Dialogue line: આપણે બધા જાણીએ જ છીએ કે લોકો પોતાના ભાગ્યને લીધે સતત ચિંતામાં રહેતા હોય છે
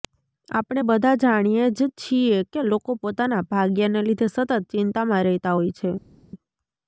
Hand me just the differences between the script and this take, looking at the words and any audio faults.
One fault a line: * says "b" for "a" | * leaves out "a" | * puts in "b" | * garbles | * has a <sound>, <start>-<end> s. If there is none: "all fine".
all fine